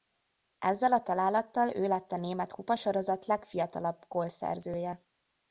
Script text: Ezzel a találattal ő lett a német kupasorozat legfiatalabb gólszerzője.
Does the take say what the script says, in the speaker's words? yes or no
yes